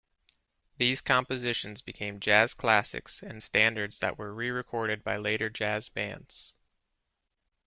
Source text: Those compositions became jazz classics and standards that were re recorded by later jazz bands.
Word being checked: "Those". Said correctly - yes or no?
no